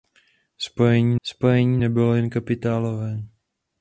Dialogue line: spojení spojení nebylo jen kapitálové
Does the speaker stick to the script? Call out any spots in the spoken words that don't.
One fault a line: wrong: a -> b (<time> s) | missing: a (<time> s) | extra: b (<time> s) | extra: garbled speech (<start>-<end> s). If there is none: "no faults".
no faults